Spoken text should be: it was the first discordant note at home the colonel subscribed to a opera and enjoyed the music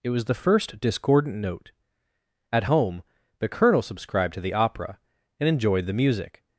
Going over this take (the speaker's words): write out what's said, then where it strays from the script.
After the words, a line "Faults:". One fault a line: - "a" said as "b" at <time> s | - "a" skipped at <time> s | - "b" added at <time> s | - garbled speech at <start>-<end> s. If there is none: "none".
it was the first discordant note at home the colonel subscribed to the opera and enjoyed the music
Faults:
- "a" said as "the" at 4.4 s